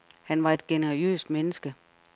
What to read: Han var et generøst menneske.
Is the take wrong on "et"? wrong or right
right